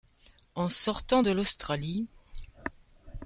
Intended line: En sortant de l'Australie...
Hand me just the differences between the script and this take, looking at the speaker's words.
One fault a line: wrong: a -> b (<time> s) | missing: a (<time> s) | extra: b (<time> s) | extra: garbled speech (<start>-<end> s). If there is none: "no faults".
no faults